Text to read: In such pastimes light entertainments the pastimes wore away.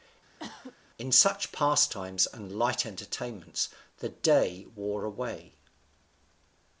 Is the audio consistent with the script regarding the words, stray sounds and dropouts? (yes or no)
no